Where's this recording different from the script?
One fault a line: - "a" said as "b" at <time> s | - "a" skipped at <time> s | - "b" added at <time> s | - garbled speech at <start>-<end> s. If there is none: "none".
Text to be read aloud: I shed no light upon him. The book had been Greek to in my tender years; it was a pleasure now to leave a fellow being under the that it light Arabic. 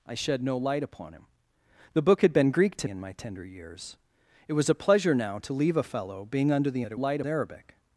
none